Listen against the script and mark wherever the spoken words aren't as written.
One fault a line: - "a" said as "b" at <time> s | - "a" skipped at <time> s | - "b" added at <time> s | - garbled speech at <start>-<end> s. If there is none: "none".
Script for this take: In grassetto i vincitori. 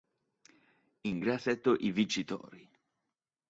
none